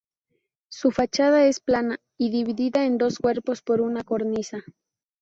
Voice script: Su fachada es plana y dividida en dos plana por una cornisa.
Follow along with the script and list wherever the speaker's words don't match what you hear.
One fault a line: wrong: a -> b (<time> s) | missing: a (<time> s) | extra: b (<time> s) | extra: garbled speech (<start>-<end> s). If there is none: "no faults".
wrong: plana -> cuerpos (3.2 s)